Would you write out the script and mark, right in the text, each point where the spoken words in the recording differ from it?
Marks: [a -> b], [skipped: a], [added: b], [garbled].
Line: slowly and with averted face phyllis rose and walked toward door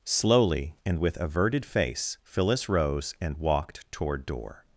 slowly and with averted face phyllis rose and walked toward door